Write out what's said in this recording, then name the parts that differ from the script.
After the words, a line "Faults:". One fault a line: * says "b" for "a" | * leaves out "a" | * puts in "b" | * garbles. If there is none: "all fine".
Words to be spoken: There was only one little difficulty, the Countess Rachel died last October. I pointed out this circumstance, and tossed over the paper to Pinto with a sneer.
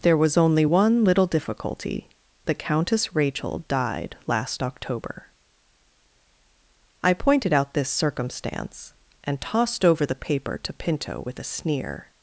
There was only one little difficulty, the Countess Rachel died last October. I pointed out this circumstance, and tossed over the paper to Pinto with a sneer.
Faults:
all fine